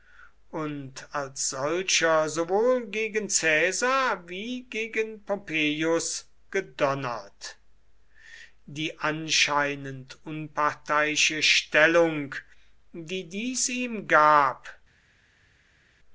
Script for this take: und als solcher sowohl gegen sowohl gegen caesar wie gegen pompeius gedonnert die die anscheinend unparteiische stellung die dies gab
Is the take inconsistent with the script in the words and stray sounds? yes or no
yes